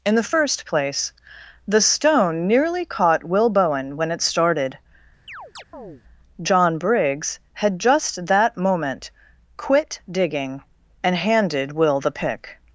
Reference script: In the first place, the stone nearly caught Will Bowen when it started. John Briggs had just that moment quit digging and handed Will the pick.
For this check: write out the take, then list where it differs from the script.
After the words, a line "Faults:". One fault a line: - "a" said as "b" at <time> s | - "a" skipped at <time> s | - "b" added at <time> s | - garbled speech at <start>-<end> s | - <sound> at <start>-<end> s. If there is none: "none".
In the first place, the stone nearly caught Will Bowen when it started. John Briggs had just that moment quit digging and handed Will the pick.
Faults:
- chirp at 5.3-6.0 s